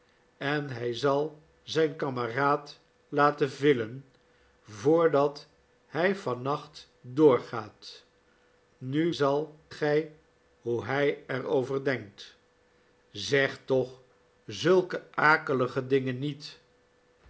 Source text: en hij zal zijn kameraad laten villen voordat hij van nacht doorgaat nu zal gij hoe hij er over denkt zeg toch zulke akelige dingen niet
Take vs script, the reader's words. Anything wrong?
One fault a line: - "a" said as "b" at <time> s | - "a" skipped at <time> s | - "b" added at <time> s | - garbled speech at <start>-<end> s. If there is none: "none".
none